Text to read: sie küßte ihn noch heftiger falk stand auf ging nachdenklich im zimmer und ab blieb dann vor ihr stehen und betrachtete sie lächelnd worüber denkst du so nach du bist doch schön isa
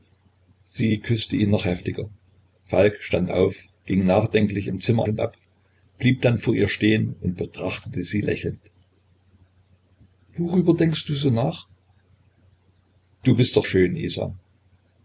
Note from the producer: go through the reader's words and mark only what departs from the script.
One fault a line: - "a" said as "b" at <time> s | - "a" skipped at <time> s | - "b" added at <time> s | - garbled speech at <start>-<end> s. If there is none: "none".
none